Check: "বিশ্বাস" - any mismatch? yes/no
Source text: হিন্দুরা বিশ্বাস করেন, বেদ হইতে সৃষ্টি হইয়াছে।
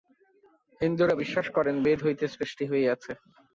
no